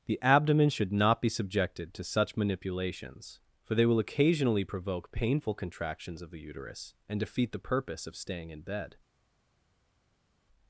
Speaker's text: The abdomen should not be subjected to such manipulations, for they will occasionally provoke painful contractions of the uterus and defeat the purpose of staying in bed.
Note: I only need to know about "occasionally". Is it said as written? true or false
true